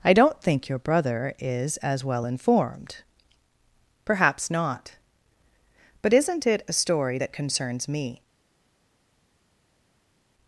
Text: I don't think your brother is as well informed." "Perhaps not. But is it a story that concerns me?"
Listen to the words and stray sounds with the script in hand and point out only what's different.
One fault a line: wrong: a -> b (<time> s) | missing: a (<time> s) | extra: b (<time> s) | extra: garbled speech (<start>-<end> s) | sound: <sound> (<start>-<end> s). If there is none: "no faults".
wrong: is -> isn't (6.1 s)